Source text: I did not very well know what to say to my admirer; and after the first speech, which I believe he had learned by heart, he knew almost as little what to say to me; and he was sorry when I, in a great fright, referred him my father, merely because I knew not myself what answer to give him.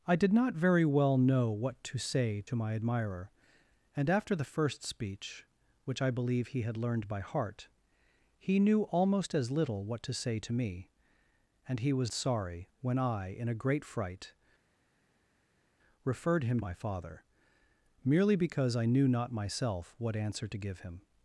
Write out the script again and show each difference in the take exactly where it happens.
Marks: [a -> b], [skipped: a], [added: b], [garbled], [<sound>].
I did not very well know what to say to my admirer; and after the first speech, which I believe he had learned by heart, he knew almost as little what to say to me; and he was sorry when I, in a great fright, referred him my father, merely because I knew not myself what answer to give him.